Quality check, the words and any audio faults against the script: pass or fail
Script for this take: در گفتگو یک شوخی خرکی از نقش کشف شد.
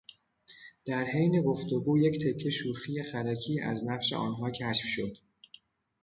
fail